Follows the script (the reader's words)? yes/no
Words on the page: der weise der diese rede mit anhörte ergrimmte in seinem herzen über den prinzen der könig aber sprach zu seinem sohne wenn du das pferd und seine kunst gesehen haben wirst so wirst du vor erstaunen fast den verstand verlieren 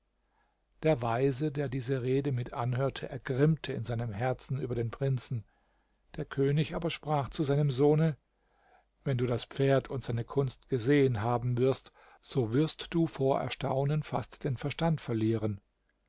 yes